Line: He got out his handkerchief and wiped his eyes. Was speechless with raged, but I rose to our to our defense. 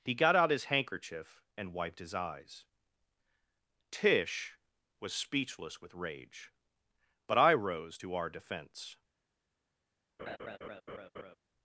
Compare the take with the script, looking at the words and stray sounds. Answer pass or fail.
fail